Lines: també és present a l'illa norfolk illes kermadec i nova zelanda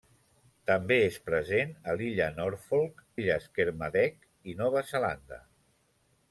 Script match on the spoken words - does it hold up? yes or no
yes